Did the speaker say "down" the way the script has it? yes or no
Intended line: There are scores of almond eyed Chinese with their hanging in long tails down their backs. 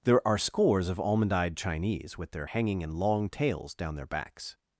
yes